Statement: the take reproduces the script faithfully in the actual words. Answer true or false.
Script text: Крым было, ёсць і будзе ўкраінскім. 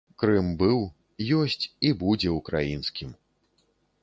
false